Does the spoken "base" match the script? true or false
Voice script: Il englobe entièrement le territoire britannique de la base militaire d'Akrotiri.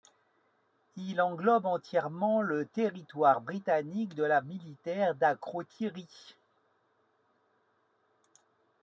false